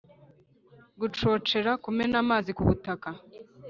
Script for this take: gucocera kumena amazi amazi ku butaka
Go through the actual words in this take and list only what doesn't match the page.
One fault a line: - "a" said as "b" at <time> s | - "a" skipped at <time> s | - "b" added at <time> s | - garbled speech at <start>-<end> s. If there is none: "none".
- "amazi" skipped at 2.5 s